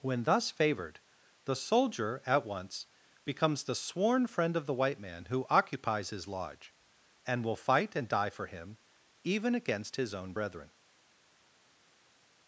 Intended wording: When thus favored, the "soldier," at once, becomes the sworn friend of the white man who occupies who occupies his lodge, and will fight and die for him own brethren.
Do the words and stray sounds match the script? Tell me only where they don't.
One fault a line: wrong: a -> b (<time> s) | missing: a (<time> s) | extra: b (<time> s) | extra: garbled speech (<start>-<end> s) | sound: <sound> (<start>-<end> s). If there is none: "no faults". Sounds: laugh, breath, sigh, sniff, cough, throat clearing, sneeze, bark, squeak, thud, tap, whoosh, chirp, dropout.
missing: who occupies (6.1 s)
extra: even against his (9.2 s)